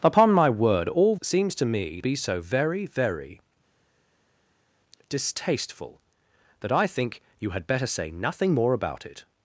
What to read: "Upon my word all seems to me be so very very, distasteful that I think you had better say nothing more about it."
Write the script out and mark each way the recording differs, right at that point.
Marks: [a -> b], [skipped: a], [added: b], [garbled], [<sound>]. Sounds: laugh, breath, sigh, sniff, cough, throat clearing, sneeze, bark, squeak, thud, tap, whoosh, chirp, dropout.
"Upon my word all seems to me be so very very, distasteful that I think you had better say nothing more about it."